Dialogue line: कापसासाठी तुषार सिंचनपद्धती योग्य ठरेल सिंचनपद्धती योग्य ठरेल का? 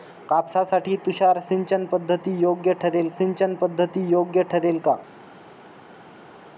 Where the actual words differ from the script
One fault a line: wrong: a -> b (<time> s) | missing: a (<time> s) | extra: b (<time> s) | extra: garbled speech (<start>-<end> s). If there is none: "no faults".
no faults